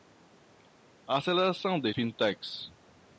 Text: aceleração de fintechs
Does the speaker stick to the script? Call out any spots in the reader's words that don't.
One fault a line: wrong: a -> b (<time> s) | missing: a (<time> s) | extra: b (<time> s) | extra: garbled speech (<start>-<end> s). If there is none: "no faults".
no faults